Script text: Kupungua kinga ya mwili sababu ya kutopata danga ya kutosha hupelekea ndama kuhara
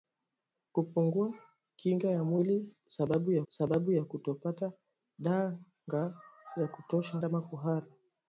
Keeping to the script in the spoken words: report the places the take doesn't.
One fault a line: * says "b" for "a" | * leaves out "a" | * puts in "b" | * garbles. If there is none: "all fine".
* puts in "sababu ya"
* leaves out "hupelekea"